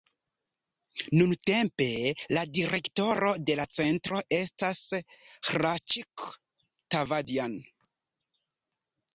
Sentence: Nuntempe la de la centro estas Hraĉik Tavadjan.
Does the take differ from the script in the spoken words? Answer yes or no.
yes